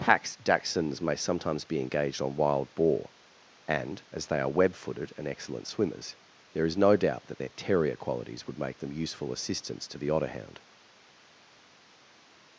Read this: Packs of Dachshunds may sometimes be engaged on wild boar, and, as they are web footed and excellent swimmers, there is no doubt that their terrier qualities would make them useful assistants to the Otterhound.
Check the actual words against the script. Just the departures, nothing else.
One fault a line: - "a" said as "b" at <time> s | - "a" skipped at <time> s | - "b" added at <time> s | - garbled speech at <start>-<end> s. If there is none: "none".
- "of" skipped at 0.3 s